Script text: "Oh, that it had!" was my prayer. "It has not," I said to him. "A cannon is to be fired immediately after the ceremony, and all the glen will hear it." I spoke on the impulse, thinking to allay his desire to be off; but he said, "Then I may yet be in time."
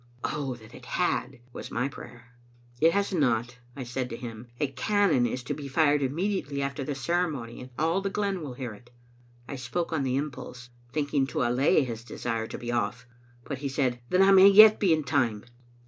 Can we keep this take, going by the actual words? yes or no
yes